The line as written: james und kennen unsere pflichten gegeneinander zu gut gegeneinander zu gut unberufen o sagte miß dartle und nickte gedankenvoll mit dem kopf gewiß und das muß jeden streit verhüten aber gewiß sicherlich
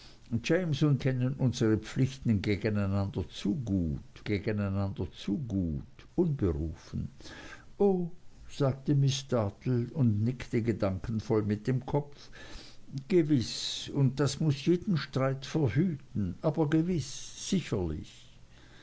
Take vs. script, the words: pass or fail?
pass